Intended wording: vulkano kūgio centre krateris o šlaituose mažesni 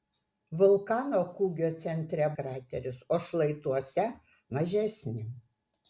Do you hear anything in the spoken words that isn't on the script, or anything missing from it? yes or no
no